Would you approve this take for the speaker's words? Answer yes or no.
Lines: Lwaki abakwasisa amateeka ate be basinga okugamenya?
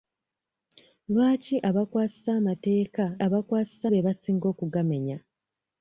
no